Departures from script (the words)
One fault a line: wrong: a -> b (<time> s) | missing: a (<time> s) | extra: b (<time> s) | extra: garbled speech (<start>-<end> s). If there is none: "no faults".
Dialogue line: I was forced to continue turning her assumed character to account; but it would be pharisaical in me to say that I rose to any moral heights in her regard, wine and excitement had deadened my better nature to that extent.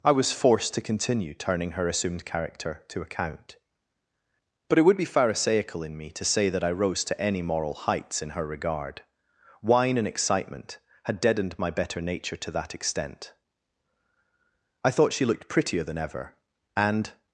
extra: I thought she looked prettier than ever and (14.9 s)